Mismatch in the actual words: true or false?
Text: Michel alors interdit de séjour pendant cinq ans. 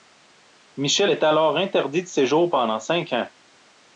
true